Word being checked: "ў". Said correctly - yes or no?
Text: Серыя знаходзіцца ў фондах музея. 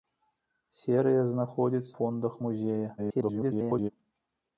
no